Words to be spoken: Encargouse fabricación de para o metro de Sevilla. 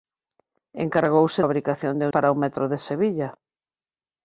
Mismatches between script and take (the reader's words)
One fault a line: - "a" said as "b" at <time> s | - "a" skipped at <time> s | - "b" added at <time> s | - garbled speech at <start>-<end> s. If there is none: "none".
none